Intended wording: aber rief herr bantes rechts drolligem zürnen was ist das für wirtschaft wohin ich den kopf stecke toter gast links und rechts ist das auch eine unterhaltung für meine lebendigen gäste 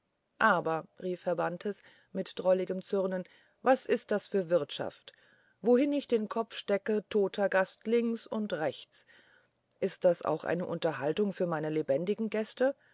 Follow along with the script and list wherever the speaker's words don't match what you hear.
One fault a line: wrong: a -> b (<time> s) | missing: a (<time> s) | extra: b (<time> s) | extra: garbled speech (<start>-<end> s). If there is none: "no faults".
wrong: rechts -> mit (2.1 s)